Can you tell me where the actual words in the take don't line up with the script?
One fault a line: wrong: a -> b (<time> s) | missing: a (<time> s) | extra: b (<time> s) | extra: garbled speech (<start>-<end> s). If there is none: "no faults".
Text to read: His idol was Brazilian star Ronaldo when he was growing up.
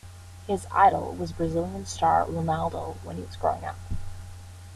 no faults